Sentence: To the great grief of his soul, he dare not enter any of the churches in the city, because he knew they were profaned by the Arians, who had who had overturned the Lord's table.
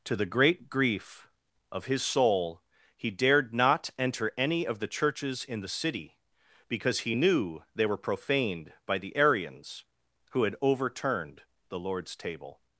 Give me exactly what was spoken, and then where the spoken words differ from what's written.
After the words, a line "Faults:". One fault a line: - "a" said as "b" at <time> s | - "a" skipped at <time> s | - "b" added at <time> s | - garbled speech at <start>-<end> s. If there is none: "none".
To the great grief of his soul, he dared not enter any of the churches in the city, because he knew they were profaned by the Arians, who had overturned the Lord's table.
Faults:
- "dare" said as "dared" at 3.1 s
- "who had" skipped at 10.5 s